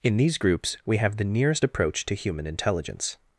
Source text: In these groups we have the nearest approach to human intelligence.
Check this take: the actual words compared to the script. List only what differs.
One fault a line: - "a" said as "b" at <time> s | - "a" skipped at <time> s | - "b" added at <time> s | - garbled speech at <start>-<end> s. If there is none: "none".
none